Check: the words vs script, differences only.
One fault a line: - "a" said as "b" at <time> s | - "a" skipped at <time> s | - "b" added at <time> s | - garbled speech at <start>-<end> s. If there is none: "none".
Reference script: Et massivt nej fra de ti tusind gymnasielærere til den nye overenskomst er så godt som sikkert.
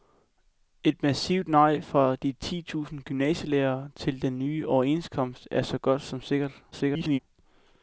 - garbled speech at 6.7-7.2 s